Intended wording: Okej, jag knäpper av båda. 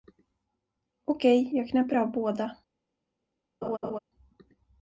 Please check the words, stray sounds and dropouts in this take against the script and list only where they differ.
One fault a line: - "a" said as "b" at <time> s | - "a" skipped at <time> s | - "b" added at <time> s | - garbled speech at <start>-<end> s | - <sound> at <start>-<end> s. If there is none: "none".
- laugh at 3.6-4.0 s